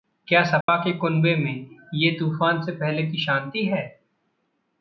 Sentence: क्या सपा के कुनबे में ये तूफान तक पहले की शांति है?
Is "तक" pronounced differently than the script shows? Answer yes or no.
yes